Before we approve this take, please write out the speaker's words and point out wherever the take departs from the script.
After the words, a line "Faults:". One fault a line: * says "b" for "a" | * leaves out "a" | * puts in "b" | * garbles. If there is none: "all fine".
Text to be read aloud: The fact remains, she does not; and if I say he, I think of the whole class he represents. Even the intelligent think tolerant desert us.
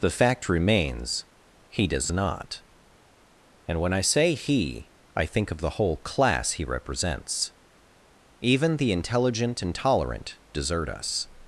The fact remains, he does not; and when I say he, I think of the whole class he represents. Even the intelligent and tolerant desert us.
Faults:
* says "he" for "she"
* says "when" for "if"
* says "and" for "think"